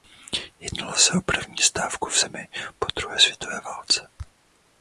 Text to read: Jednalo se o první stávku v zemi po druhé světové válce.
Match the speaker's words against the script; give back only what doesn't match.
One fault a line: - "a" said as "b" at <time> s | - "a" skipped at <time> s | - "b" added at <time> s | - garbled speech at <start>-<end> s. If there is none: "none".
none